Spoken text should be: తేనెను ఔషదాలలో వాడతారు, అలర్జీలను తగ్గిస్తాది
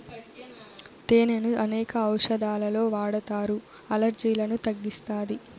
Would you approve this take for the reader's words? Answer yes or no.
no